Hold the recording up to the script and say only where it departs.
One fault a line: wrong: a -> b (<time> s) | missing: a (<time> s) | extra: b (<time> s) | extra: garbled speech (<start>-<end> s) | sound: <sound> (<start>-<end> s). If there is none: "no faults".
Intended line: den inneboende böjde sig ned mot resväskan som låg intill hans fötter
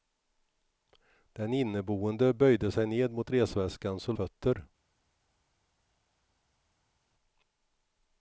missing: låg intill hans (4.2 s)